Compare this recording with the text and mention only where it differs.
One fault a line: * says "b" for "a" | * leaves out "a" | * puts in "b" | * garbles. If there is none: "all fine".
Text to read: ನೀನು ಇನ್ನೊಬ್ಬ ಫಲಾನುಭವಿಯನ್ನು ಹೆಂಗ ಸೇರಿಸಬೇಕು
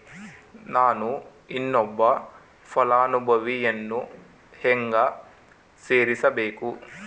* says "ನಾನು" for "ನೀನು"